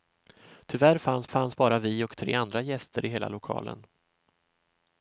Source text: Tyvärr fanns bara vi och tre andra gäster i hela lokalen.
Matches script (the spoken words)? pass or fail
fail